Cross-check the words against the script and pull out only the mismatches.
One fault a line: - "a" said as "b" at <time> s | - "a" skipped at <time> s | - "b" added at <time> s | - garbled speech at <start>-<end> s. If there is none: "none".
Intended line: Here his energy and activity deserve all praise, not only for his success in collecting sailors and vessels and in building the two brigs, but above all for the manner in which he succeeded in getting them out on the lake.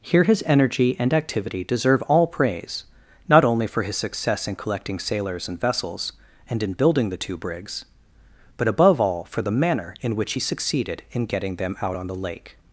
none